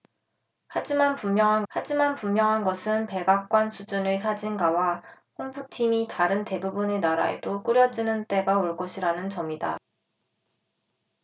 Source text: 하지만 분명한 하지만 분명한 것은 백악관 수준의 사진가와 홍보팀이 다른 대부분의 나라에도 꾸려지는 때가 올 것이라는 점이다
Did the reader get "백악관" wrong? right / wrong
right